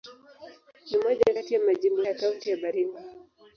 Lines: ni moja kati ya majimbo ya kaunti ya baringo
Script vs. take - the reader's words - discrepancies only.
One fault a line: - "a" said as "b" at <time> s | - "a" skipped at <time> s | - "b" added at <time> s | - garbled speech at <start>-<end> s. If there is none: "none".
none